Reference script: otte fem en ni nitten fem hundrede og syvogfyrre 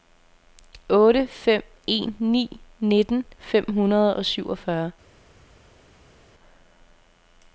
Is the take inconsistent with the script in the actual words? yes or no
no